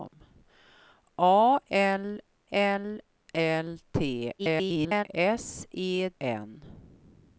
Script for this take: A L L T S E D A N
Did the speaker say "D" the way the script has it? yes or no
no